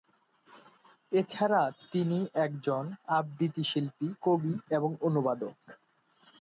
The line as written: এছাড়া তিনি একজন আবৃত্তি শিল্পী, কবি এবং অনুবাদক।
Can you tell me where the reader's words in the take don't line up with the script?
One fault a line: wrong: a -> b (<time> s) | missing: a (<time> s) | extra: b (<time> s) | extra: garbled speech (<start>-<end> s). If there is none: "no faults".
no faults